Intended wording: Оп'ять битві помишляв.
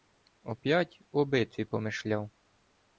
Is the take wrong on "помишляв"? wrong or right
right